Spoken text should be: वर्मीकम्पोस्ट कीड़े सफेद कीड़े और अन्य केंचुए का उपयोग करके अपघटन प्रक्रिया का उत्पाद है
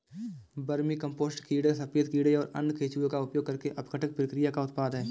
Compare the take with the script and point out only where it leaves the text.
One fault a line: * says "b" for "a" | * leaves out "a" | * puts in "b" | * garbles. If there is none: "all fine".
all fine